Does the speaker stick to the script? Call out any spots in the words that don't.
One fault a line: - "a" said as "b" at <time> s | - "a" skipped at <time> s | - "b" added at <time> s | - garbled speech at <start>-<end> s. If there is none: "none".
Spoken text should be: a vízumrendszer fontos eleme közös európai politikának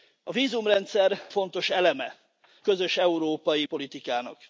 none